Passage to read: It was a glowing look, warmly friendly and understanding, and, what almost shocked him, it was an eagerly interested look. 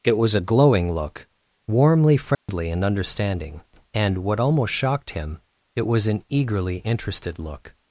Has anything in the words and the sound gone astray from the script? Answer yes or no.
yes